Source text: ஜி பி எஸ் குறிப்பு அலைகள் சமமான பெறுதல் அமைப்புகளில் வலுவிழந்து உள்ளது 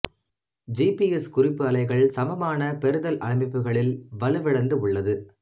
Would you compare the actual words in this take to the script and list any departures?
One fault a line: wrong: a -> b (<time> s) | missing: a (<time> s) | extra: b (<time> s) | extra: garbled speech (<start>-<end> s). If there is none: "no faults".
no faults